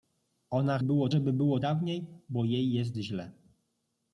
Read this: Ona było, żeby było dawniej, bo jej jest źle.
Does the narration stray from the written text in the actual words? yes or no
no